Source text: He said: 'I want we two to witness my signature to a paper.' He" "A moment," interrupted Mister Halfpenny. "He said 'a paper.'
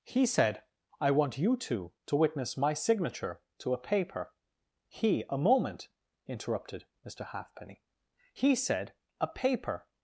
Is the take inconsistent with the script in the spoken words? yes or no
yes